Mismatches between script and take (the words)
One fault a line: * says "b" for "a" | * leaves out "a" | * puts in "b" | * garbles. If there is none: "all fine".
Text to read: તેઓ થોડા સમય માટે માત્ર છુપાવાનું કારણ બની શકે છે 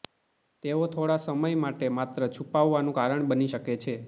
all fine